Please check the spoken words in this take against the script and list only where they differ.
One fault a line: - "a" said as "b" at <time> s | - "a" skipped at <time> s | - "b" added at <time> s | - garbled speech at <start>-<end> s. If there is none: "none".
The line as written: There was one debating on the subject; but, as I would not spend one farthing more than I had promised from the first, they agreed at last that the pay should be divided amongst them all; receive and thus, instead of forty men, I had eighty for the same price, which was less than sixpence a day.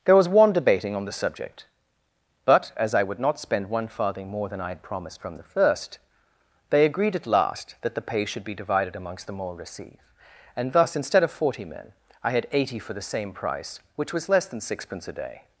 none